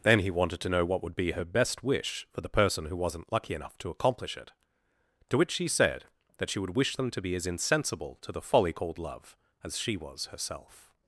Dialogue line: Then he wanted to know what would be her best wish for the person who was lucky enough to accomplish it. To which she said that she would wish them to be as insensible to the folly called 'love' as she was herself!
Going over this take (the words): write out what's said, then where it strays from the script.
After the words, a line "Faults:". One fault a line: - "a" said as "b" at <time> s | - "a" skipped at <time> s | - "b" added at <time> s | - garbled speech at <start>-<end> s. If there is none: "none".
Then he wanted to know what would be her best wish for the person who wasn't lucky enough to accomplish it. To which she said that she would wish them to be as insensible to the folly called 'love' as she was herself!
Faults:
- "was" said as "wasn't" at 3.0 s